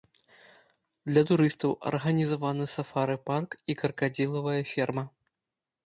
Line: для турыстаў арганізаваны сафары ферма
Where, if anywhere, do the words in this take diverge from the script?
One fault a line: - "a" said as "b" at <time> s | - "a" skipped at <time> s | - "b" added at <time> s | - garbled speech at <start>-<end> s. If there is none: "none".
- "парк і кракадзілавая" added at 3.3 s